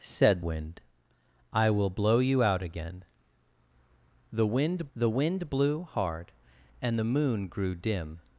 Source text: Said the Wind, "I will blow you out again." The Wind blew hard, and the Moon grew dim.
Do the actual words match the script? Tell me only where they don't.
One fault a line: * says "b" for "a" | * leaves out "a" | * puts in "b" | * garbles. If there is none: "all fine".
* leaves out "the"
* puts in "the Wind"